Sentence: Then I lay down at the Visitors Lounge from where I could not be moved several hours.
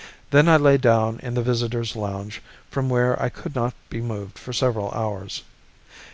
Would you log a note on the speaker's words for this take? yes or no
yes